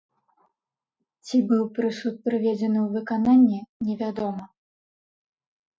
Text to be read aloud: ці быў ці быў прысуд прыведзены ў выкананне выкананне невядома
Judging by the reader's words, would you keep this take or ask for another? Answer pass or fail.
fail